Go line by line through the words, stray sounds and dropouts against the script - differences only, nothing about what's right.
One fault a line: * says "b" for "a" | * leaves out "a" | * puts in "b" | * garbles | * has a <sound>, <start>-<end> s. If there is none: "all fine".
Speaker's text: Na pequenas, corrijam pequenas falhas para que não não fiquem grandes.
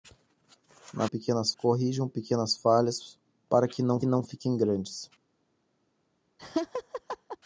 * has a laugh, 6.4-7.4 s